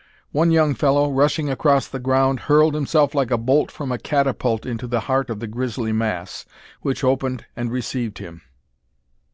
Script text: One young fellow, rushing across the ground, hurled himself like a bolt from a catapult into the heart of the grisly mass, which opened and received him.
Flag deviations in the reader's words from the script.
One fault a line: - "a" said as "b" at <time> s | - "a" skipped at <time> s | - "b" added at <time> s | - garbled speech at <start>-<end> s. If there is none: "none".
none